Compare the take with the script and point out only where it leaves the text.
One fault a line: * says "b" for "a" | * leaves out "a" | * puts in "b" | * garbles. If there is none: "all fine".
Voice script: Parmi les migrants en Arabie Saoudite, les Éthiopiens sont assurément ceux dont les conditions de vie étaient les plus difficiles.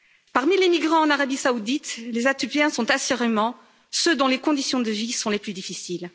* says "sont" for "étaient"